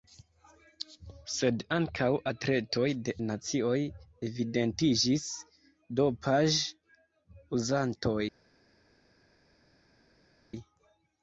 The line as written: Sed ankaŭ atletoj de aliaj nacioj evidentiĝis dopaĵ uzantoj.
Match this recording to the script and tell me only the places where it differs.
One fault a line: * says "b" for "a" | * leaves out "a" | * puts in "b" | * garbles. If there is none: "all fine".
* leaves out "aliaj"